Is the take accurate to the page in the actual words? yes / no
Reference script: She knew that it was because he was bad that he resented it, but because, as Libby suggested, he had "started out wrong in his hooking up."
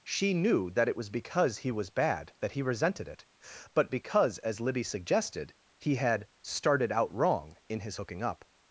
yes